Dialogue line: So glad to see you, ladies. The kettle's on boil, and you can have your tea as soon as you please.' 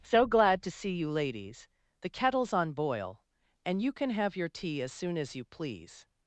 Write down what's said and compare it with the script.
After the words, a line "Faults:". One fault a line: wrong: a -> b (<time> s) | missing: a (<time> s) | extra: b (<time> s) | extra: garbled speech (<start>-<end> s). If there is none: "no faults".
So glad to see you, ladies. The kettle's on boil, and you can have your tea as soon as you please.'
Faults:
no faults